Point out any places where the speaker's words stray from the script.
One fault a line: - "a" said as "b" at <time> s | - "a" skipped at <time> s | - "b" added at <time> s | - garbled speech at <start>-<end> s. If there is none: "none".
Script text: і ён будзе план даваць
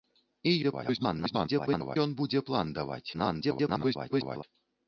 - garbled speech at 0.6-2.0 s
- garbled speech at 3.1-4.4 s